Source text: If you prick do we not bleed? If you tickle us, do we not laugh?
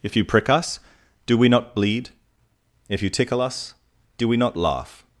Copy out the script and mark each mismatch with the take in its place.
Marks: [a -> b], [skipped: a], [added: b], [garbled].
If you prick [added: us] do we not bleed? If you tickle us, do we not laugh?